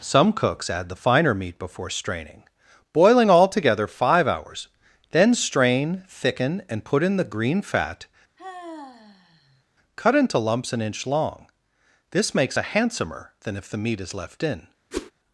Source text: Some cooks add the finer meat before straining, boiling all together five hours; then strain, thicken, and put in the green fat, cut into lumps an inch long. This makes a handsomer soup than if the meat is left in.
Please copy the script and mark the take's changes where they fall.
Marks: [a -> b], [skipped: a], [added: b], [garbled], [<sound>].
Some cooks add the finer meat before straining, boiling all together five hours; then strain, thicken, and put in the green fat, [sigh] cut into lumps an inch long. This makes a handsomer [skipped: soup] than if the meat is left in. [whoosh]